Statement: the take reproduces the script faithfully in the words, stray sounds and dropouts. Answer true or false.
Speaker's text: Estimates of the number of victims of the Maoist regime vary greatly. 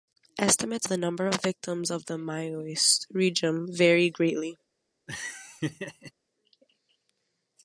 false